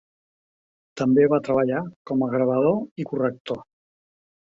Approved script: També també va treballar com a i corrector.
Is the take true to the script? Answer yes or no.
no